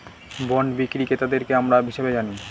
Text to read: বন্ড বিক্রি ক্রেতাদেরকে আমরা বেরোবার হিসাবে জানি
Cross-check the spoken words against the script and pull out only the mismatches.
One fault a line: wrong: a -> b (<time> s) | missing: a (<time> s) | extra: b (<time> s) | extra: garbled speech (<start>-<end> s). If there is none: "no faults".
missing: বেরোবার (1.8 s)